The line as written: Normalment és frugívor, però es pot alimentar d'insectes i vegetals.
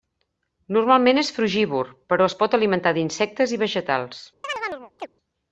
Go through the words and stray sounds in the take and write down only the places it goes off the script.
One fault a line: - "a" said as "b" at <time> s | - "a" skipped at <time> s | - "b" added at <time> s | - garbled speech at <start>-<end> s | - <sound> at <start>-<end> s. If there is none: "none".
- chirp at 4.4-5.1 s